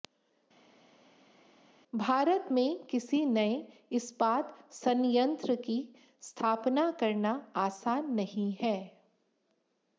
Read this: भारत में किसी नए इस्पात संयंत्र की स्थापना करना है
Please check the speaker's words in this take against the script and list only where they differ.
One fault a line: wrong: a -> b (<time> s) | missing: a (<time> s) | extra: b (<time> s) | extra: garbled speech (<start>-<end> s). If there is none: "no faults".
extra: आसान नहीं (7.6 s)